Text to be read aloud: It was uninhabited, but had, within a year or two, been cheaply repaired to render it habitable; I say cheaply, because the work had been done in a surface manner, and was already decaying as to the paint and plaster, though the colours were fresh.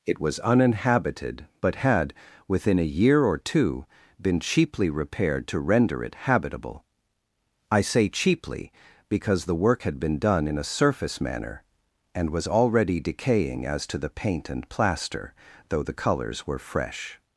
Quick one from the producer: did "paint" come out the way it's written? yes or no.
yes